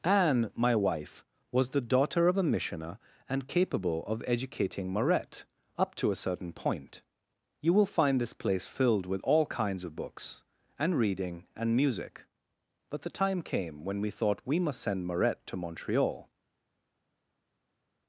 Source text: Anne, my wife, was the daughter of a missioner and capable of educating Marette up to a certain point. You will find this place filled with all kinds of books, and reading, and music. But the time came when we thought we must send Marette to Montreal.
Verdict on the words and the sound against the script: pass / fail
pass